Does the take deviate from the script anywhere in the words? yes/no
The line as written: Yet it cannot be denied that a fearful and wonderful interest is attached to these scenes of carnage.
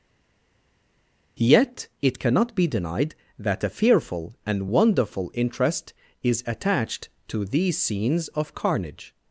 no